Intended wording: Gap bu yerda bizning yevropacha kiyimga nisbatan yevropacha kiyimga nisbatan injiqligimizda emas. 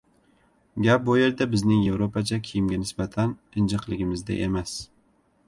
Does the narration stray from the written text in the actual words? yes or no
yes